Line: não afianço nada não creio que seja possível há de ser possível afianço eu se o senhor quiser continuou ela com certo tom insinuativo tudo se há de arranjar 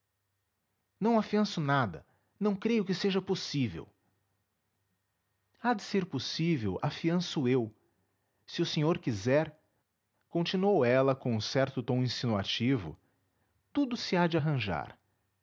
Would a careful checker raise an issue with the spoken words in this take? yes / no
no